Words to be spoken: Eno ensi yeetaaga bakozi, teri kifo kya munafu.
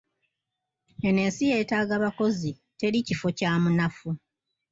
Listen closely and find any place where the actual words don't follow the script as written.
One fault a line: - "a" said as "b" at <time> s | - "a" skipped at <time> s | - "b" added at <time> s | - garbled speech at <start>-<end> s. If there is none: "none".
none